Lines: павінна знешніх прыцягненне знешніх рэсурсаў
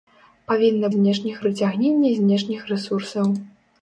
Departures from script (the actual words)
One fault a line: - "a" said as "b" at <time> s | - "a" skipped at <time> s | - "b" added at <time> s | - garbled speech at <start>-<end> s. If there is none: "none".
none